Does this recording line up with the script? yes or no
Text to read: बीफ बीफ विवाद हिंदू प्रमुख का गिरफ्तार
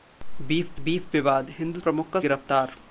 yes